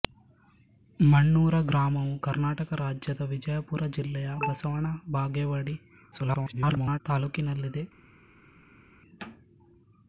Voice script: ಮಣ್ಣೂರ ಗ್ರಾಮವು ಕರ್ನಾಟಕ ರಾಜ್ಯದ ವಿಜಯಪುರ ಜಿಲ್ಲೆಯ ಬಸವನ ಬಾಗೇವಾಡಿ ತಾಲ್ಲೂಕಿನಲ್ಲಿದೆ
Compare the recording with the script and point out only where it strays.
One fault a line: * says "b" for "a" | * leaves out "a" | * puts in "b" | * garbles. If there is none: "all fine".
* garbles